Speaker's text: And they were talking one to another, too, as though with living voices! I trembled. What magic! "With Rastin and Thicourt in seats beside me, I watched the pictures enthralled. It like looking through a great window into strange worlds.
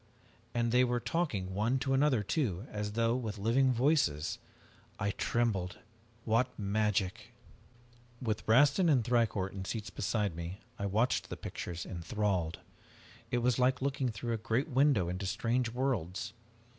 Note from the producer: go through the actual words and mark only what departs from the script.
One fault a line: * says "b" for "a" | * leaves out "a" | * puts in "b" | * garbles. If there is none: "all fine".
* puts in "was"